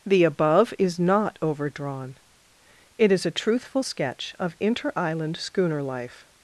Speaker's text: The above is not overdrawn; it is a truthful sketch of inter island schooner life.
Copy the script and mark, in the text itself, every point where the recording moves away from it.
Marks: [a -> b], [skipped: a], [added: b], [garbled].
The above is not overdrawn; it is a truthful sketch of inter island schooner life.